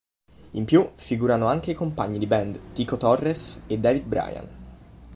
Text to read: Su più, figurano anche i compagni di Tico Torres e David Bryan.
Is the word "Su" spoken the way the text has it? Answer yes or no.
no